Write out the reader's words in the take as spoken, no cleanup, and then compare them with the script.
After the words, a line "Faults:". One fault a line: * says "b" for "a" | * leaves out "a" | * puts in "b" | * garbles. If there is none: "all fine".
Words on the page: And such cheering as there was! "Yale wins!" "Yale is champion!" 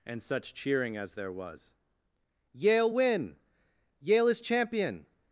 And such cheering as there was! "Yale win!" "Yale is champion!"
Faults:
* says "win" for "wins"